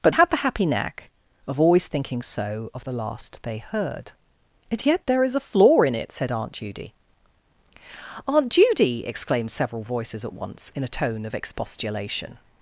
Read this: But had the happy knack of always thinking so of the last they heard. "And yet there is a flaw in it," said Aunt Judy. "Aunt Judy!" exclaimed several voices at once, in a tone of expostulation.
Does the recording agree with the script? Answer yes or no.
yes